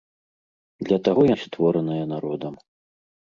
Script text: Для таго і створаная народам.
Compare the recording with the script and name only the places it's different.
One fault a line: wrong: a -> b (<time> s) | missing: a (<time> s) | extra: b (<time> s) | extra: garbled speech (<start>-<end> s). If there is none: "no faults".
no faults